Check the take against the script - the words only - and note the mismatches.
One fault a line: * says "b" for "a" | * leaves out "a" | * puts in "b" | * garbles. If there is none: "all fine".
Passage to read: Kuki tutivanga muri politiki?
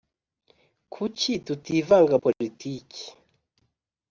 * leaves out "muri"